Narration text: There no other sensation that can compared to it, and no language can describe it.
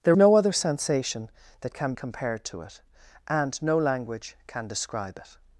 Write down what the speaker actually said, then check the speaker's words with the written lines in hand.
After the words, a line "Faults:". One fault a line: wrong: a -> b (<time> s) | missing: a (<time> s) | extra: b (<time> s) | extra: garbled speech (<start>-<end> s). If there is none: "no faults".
There no other sensation that can compared to it, and no language can describe it.
Faults:
no faults